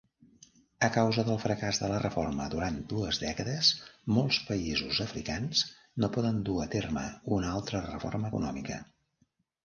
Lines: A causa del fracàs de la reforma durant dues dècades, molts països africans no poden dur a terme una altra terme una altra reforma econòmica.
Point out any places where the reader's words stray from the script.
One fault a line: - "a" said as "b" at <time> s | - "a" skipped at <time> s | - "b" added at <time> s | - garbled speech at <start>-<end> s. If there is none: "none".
- "terme una altra" skipped at 7.8 s